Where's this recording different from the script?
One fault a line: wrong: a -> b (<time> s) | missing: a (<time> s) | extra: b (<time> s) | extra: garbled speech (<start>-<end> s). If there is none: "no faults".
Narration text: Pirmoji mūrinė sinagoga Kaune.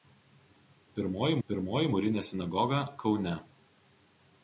extra: pirmoji (1.5 s)